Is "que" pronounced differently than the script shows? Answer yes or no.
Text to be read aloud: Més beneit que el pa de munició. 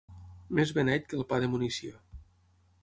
no